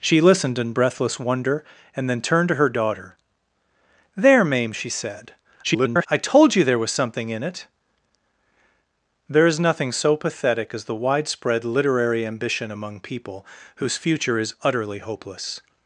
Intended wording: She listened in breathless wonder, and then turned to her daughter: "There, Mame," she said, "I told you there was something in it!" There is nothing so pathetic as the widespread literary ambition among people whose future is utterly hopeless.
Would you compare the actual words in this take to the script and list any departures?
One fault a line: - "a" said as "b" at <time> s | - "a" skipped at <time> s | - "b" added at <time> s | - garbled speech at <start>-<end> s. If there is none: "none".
- garbled speech at 5.6-6.1 s